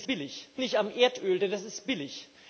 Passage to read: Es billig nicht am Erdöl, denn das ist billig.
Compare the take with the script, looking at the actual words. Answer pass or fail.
pass